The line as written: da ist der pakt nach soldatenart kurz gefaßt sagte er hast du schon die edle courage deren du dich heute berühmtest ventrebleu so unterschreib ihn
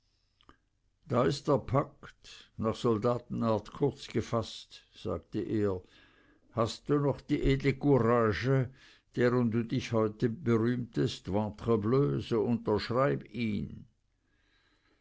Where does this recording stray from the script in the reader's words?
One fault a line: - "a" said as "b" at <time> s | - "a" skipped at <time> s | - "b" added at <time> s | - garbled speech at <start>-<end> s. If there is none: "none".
- "schon" said as "noch" at 7.0 s